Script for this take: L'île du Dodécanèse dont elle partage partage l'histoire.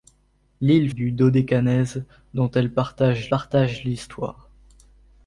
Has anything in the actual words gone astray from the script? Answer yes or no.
no